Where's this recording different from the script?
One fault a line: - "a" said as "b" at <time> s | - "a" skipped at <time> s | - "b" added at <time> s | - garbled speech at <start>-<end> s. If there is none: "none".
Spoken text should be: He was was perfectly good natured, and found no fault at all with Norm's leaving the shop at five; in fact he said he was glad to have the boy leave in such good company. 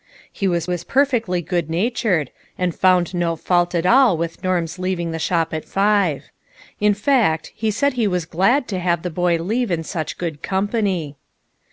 none